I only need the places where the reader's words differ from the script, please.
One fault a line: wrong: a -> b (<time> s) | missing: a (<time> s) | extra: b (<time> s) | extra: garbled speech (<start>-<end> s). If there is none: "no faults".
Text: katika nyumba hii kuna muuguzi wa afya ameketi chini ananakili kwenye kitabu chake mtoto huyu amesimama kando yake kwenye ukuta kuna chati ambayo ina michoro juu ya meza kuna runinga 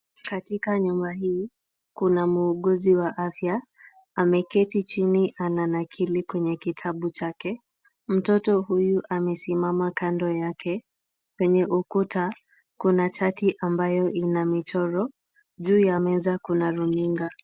no faults